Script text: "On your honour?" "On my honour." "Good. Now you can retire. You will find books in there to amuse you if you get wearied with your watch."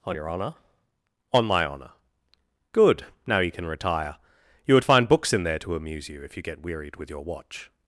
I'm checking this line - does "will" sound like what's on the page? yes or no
no